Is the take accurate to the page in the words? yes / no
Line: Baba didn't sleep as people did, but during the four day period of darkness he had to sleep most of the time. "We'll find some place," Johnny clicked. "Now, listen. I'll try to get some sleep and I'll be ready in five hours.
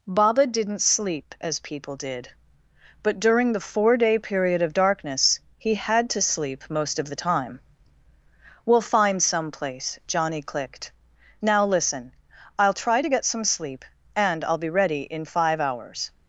yes